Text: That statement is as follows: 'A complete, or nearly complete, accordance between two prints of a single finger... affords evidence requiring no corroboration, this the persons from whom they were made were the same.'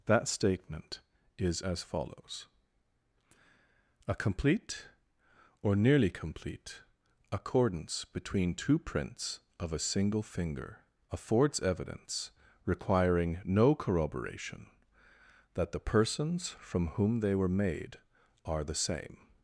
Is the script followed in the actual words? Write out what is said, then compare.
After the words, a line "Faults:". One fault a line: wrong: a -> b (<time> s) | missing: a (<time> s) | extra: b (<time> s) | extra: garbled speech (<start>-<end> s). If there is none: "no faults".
That statement is as follows: 'A complete, or nearly complete, accordance between two prints of a single finger... affords evidence requiring no corroboration, that the persons from whom they were made are the same.'
Faults:
wrong: this -> that (15.5 s)
wrong: were -> are (18.4 s)